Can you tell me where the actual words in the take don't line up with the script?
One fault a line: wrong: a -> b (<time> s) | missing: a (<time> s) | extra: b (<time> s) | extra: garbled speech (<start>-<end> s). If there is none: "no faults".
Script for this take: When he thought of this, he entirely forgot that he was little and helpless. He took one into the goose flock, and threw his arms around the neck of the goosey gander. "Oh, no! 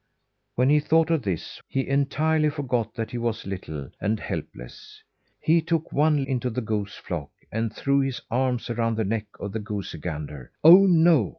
no faults